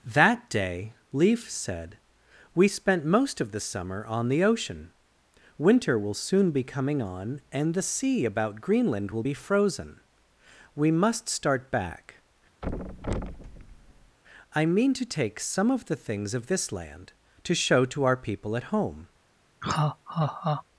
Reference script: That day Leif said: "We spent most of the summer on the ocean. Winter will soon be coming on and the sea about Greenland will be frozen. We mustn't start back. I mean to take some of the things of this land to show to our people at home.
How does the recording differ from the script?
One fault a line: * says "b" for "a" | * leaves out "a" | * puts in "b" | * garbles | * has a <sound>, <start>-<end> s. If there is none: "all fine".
* says "must" for "mustn't"
* has a thud, 12.6-14.2 s
* has a laugh, 19.6-20.6 s